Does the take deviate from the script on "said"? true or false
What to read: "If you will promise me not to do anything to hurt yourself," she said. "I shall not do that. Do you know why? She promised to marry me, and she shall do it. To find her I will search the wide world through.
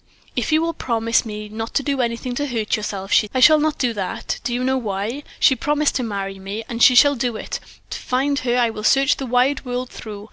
true